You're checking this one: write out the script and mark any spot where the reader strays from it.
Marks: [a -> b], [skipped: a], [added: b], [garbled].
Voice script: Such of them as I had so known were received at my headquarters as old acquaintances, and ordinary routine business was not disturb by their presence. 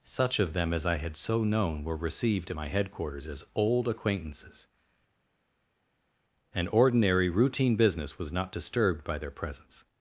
Such of them as I had so known were received at my headquarters as old acquaintances, and ordinary routine business was not [disturb -> disturbed] by their presence.